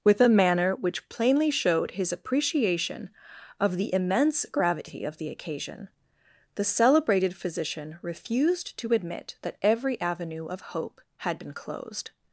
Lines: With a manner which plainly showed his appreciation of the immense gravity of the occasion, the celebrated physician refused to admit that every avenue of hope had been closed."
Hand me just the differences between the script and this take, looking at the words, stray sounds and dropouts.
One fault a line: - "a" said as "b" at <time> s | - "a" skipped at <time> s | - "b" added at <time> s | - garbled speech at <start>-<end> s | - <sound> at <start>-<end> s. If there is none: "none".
none